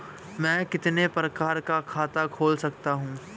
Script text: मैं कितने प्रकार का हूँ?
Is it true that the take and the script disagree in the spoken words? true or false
true